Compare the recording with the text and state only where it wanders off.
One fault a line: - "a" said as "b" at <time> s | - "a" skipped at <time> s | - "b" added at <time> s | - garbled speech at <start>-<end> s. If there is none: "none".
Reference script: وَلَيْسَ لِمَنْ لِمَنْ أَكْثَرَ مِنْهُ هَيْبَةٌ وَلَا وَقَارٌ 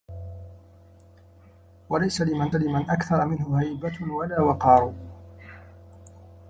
none